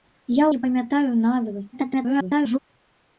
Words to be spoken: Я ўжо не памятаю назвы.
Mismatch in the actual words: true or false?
true